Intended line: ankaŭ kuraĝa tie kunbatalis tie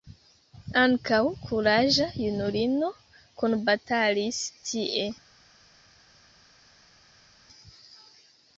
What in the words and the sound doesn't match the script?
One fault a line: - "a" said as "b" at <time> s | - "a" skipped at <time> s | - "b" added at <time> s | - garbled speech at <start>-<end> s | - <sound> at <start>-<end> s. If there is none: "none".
- "tie" said as "junulino" at 2.2 s